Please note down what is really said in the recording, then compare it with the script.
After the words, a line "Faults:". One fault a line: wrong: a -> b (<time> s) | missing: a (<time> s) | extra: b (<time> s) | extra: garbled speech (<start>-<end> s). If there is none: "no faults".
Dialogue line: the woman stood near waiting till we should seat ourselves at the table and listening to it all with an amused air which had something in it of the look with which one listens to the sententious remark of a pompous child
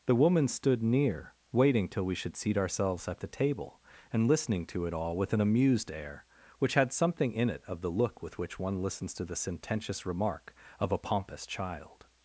the woman stood near waiting till we should seat ourselves at the table and listening to it all with an amused air which had something in it of the look with which one listens to the sententious remark of a pompous child
Faults:
no faults